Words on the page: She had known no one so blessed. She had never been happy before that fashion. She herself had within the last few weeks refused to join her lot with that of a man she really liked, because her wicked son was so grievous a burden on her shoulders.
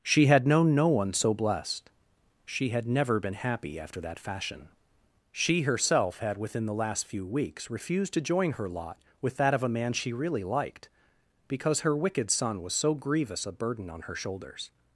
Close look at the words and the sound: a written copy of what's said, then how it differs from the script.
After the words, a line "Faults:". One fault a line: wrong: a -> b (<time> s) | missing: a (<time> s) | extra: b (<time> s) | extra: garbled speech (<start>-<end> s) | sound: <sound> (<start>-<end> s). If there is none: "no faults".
She had known no one so blessed. She had never been happy after that fashion. She herself had within the last few weeks refused to join her lot with that of a man she really liked, because her wicked son was so grievous a burden on her shoulders.
Faults:
wrong: before -> after (3.8 s)